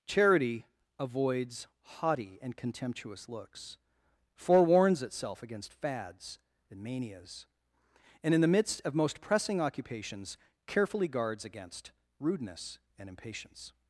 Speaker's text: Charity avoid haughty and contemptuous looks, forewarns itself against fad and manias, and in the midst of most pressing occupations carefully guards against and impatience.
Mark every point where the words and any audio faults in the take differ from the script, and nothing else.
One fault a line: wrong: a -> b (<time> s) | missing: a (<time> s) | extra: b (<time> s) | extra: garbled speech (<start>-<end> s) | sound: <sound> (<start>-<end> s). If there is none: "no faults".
wrong: avoid -> avoids (1.0 s)
wrong: fad -> fads (5.7 s)
extra: rudeness (12.2 s)